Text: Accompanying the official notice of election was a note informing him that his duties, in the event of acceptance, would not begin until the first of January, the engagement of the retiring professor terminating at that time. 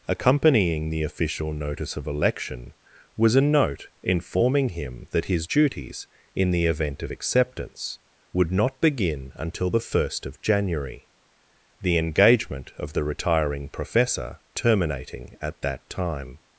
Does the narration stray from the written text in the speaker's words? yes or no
no